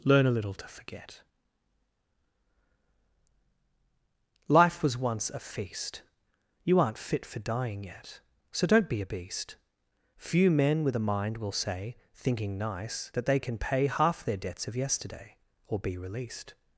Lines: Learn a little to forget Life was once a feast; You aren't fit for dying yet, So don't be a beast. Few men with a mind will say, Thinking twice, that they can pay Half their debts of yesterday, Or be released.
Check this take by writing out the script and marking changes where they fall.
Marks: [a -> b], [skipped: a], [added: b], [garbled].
Learn a little to forget Life was once a feast; You aren't fit for dying yet, So don't be a beast. Few men with a mind will say, Thinking [twice, -> nice] that they can pay Half their debts of yesterday, Or be released.